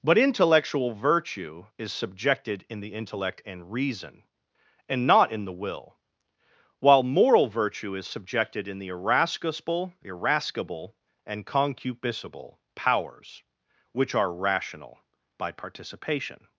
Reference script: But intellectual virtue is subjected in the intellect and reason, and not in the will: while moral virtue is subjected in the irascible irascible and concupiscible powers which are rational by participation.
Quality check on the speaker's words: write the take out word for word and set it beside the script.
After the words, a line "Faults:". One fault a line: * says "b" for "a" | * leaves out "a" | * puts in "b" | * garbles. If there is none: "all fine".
But intellectual virtue is subjected in the intellect and reason, and not in the will: while moral virtue is subjected in the irascible irascible and concupiscible powers which are rational by participation.
Faults:
all fine